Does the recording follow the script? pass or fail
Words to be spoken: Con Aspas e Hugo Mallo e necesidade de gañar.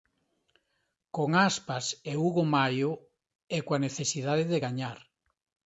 fail